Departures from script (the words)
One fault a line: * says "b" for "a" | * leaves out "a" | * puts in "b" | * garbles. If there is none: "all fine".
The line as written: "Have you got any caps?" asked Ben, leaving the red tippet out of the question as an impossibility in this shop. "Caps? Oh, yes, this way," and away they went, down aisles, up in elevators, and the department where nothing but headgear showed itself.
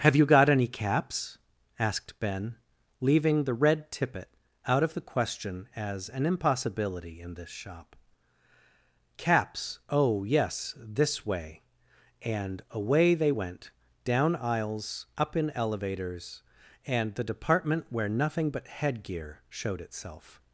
all fine